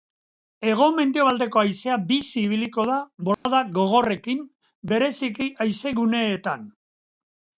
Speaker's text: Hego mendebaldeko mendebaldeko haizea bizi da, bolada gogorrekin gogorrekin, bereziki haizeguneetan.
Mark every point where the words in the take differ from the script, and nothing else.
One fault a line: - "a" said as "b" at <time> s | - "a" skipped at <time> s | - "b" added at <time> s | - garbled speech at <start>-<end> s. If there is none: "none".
- "mendebaldeko" skipped at 1.6 s
- "ibiliko" added at 2.5 s
- "gogorrekin" skipped at 4.4 s